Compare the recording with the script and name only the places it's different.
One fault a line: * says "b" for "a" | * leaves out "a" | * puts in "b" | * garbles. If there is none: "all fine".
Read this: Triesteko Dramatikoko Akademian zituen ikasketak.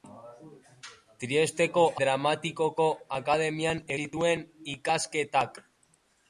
all fine